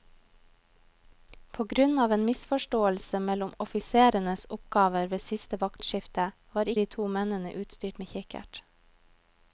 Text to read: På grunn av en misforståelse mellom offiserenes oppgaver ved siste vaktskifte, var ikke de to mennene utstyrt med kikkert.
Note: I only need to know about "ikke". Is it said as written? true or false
false